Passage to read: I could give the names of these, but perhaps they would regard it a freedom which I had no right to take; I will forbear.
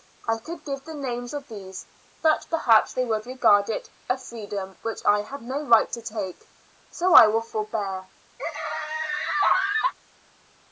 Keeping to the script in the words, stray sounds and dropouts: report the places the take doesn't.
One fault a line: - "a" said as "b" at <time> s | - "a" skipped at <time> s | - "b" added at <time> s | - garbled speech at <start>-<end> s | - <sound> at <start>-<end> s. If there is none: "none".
- "so" added at 6.9 s
- laugh at 8.4-9.9 s